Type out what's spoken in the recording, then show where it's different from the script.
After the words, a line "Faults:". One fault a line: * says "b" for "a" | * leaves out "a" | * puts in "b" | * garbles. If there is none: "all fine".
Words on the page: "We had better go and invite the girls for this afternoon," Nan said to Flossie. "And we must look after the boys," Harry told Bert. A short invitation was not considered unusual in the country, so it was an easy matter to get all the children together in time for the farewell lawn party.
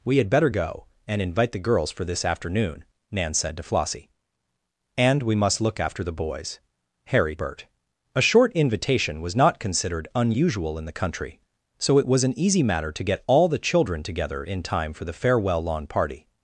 "We had better go and invite the girls for this afternoon," Nan said to Flossie. "And we must look after the boys," Harry Bert. A short invitation was not considered unusual in the country, so it was an easy matter to get all the children together in time for the farewell lawn party.
Faults:
* leaves out "told"